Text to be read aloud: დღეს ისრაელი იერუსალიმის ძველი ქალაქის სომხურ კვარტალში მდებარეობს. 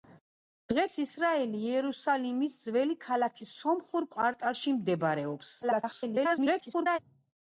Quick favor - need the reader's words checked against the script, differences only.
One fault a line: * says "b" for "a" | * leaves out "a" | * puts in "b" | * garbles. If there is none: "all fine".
* garbles